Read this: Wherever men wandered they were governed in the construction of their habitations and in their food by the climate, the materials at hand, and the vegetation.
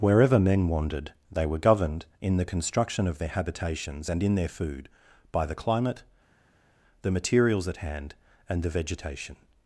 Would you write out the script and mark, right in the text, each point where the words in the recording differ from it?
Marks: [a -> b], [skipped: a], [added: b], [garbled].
Wherever men wandered they were governed in the construction of their habitations and in their food by the climate, the materials at hand, and the vegetation.